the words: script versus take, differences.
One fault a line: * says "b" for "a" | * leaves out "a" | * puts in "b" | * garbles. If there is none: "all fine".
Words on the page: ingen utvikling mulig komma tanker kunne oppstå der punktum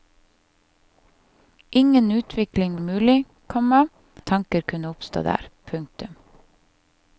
all fine